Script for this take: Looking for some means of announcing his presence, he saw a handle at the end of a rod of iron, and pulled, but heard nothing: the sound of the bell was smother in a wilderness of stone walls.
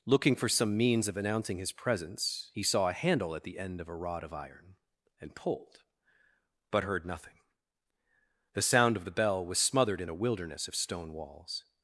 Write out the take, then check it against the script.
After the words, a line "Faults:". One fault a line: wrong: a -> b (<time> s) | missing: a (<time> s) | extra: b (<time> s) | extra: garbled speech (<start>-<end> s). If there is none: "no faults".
Looking for some means of announcing his presence, he saw a handle at the end of a rod of iron, and pulled, but heard nothing: the sound of the bell was smothered in a wilderness of stone walls.
Faults:
wrong: smother -> smothered (9.6 s)